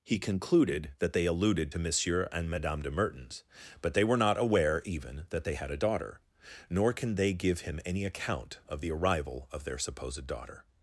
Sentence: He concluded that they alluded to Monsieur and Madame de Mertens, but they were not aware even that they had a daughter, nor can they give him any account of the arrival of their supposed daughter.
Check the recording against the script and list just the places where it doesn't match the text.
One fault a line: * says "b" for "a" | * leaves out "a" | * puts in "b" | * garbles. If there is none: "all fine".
all fine